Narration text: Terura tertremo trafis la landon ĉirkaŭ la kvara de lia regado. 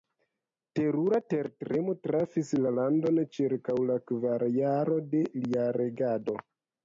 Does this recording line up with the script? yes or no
no